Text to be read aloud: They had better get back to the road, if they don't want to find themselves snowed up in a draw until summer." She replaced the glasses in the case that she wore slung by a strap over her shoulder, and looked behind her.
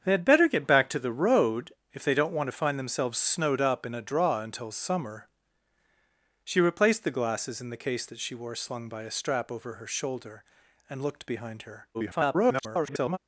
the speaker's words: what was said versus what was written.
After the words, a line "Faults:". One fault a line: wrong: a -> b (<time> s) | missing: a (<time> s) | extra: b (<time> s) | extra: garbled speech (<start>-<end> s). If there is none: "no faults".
They had better get back to the road, if they don't want to find themselves snowed up in a draw until summer." She replaced the glasses in the case that she wore slung by a strap over her shoulder, and looked behind her. [garbled]
Faults:
extra: garbled speech (11.9-13.2 s)